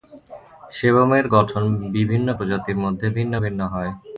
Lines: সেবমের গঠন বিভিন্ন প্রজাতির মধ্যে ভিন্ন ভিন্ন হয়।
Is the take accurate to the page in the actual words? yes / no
yes